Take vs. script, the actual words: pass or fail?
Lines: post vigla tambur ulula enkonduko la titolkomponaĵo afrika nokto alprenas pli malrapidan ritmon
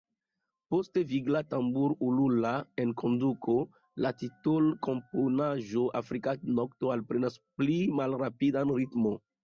pass